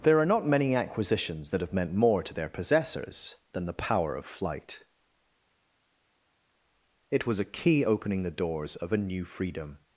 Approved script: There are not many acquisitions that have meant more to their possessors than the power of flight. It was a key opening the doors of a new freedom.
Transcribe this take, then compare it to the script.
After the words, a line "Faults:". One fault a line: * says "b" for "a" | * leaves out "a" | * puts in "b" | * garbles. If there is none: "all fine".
There are not many acquisitions that have meant more to their possessors than the power of flight. It was a key opening the doors of a new freedom.
Faults:
all fine